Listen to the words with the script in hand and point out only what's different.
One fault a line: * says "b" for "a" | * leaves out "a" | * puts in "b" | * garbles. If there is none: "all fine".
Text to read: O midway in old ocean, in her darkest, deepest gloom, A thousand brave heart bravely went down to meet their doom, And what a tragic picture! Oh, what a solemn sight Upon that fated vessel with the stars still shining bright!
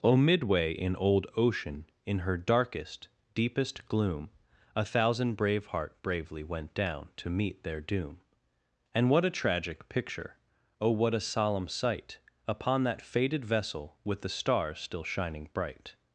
all fine